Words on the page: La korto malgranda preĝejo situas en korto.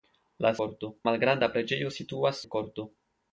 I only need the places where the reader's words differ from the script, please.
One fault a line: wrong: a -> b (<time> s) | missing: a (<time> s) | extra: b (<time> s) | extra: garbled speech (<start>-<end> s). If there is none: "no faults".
no faults